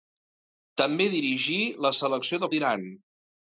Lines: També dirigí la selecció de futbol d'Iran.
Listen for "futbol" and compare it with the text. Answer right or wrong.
wrong